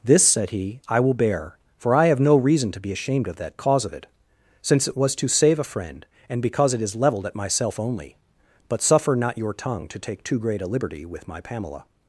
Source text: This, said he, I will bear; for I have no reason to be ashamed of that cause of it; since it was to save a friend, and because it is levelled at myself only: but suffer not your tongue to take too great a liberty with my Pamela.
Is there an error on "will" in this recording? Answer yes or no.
no